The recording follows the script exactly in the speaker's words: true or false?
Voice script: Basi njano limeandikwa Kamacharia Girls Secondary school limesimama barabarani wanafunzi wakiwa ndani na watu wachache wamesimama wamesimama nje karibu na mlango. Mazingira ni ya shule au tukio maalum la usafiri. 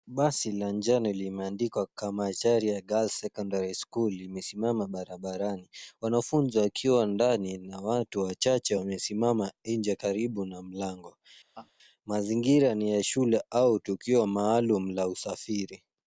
false